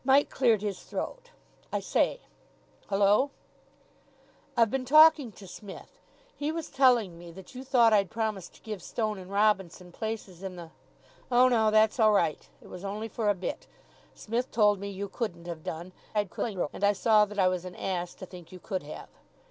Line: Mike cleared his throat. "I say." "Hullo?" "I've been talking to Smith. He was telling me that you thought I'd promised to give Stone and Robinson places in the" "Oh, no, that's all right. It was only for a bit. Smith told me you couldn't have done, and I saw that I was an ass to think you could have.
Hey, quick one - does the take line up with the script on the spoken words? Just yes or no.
no